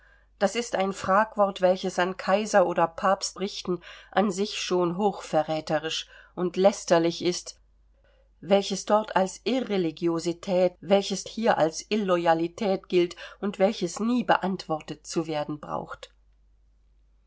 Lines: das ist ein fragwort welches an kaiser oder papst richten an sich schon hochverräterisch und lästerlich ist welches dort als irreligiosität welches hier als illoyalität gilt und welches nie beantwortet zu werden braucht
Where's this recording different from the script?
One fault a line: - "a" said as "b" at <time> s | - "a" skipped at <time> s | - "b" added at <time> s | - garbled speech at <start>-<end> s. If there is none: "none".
none